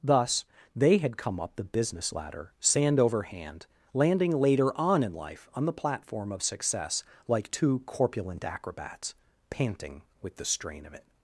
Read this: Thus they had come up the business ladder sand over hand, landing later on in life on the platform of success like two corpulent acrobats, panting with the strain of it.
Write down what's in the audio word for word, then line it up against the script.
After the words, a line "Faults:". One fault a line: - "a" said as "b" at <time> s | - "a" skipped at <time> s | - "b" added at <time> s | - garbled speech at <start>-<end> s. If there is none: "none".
Thus they had come up the business ladder sand over hand, landing later on in life on the platform of success like two corpulent acrobats, panting with the strain of it.
Faults:
none